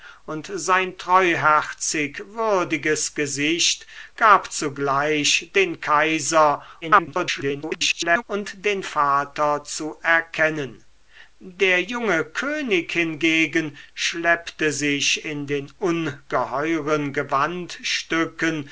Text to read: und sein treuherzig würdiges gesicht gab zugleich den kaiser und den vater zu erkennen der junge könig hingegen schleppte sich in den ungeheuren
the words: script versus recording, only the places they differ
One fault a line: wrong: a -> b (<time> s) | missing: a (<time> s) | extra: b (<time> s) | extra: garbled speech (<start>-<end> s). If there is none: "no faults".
extra: garbled speech (6.8-8.2 s)